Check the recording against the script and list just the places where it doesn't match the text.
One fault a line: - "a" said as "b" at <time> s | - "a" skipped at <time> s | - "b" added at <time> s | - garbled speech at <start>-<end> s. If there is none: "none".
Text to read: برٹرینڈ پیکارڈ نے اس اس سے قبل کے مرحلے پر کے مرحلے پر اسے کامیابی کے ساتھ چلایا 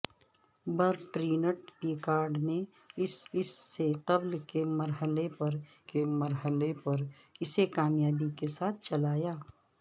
none